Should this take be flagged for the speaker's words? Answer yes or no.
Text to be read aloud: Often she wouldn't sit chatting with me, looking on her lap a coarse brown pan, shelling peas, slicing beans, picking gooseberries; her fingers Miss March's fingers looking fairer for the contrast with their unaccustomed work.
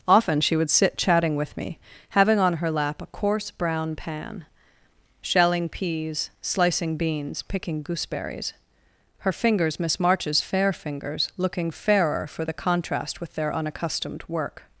yes